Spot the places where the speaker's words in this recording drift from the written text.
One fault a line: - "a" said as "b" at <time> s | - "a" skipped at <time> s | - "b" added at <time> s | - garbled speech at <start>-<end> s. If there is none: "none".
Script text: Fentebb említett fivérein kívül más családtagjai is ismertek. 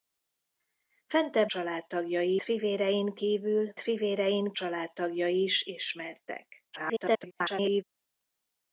- "említett" said as "családtagjai" at 1.5 s
- "más" said as "fivérein" at 3.8 s
- garbled speech at 6.7-7.8 s